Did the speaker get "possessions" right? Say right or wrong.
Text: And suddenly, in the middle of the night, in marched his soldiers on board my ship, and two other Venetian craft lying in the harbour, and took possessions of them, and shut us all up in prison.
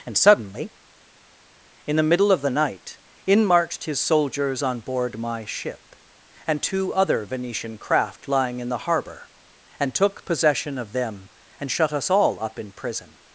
wrong